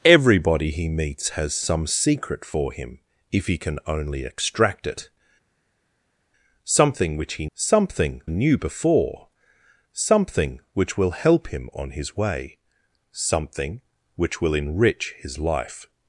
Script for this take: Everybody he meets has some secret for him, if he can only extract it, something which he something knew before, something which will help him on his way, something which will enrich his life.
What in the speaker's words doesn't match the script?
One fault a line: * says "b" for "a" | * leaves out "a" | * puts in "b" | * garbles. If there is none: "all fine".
all fine